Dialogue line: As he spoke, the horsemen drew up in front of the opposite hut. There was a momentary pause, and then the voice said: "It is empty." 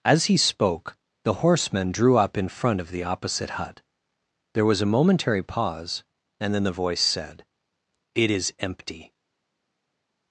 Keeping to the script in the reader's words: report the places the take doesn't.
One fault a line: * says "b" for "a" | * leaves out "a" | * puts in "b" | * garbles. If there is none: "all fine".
all fine